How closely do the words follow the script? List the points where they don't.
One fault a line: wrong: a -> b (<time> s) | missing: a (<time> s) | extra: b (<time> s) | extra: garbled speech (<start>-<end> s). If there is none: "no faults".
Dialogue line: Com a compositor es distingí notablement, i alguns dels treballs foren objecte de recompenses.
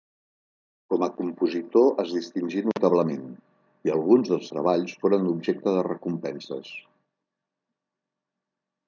no faults